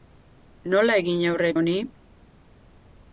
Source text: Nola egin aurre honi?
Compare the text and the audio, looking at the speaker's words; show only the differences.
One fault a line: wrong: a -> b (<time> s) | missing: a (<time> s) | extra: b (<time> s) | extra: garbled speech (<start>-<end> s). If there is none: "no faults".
no faults